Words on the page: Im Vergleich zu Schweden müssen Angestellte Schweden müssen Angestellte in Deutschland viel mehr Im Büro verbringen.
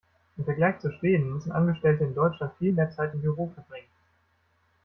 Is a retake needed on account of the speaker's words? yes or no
yes